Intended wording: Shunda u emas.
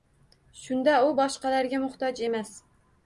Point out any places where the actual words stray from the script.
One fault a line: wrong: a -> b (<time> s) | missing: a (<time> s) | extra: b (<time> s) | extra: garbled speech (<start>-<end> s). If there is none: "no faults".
extra: boshqalarga muhtoj (1.2 s)